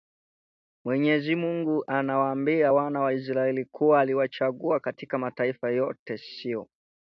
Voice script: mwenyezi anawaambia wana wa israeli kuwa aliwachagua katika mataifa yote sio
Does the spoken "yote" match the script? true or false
true